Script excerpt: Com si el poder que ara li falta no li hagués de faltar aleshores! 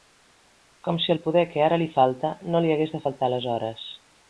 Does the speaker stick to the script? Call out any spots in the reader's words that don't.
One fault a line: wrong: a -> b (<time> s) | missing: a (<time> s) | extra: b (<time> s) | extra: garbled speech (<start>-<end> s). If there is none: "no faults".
no faults